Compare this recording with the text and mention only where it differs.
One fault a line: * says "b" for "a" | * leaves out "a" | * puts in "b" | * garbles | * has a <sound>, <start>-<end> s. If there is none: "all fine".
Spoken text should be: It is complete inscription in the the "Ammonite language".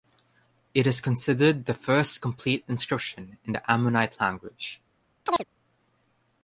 * puts in "considered the first"
* leaves out "the"
* has a chirp, 5.3-5.5 s